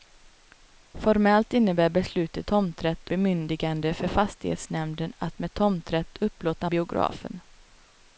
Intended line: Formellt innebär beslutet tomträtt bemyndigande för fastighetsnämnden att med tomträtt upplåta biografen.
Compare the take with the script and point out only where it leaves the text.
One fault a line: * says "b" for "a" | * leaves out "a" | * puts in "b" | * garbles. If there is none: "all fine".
all fine